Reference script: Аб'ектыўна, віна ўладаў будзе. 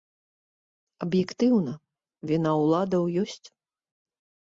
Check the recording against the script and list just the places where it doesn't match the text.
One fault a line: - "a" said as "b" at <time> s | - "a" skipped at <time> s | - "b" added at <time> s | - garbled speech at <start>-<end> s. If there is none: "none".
- "будзе" said as "ёсць" at 3.2 s